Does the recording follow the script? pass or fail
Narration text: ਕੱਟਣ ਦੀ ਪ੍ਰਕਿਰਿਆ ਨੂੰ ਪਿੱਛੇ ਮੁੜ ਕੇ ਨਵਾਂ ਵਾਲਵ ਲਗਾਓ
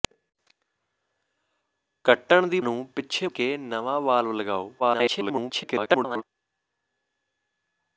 fail